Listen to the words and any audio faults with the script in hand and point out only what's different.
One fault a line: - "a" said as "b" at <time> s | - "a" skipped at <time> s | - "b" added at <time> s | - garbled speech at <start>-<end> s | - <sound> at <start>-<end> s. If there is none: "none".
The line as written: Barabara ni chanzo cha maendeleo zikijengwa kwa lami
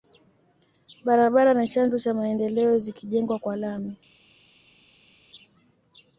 none